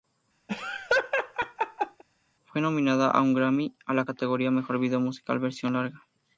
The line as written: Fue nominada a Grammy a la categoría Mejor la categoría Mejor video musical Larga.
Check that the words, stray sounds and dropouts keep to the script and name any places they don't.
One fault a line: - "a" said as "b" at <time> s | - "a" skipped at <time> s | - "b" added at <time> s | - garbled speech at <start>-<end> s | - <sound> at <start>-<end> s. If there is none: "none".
- laugh at 0.5-2.0 s
- "un" added at 3.2 s
- "la categoría Mejor" skipped at 4.8 s
- "Versión" added at 5.4 s